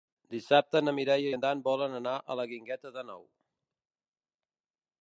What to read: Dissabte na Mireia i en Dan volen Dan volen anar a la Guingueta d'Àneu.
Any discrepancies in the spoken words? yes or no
yes